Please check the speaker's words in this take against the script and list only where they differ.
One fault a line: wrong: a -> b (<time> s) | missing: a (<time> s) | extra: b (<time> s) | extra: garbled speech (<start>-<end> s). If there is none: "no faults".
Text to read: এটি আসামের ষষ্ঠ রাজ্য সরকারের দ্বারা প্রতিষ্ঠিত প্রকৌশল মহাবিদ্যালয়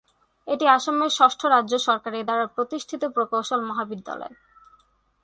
no faults